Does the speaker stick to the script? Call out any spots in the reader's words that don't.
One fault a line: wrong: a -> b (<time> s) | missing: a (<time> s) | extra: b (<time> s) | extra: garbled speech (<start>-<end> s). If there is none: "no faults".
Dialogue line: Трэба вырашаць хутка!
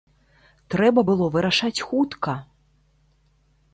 extra: было (1.1 s)